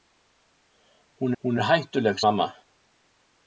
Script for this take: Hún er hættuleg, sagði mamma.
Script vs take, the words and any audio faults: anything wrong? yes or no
yes